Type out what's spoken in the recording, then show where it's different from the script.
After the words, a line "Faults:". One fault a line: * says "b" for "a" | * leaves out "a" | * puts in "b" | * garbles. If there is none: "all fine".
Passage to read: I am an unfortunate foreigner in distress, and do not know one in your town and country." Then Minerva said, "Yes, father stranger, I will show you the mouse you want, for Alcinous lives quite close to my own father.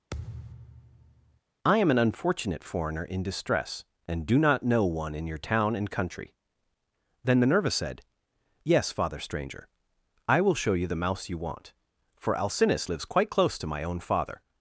I am an unfortunate foreigner in distress, and do not know one in your town and country." Then Minerva said, "Yes, father stranger, I will show you the mouse you want, for Alcinous lives quite close to my own father.
Faults:
all fine